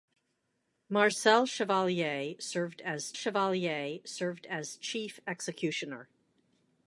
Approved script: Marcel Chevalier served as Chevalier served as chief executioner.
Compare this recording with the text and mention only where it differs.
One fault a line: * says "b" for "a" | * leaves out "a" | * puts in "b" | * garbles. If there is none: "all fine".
all fine